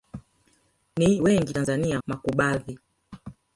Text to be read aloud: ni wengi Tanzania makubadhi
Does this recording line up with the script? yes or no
yes